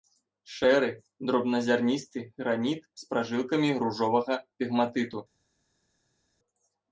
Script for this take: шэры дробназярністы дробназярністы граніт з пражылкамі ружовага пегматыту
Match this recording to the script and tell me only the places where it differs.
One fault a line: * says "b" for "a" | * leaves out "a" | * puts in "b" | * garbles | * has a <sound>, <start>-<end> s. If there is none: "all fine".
* leaves out "дробназярністы"